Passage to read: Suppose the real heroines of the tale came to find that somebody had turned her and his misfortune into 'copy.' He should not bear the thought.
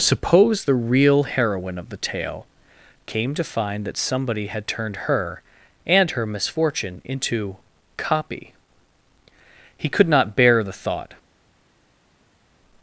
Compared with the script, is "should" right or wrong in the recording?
wrong